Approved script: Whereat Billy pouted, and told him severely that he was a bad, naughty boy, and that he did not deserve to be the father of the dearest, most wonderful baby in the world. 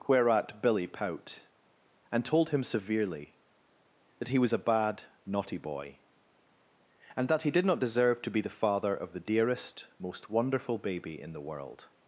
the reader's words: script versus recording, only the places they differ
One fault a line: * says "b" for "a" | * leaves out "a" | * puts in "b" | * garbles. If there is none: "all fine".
* says "pout" for "pouted"